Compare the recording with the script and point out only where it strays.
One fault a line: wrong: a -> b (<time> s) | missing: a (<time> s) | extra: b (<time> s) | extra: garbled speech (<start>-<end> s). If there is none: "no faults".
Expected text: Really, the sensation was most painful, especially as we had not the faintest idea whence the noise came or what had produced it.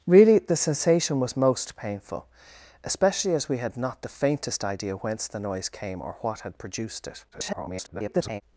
extra: garbled speech (7.3-8.4 s)